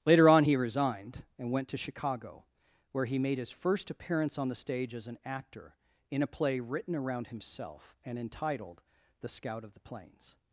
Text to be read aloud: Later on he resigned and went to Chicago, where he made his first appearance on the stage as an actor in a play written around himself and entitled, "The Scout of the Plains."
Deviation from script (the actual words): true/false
false